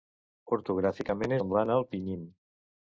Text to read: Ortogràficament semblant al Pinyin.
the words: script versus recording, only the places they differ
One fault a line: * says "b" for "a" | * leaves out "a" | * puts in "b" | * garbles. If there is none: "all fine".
all fine